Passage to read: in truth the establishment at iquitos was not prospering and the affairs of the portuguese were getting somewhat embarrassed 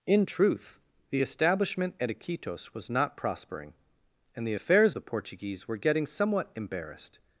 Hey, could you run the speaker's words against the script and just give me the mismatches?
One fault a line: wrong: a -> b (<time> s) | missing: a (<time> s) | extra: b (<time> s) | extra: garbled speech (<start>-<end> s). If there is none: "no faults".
missing: of (5.0 s)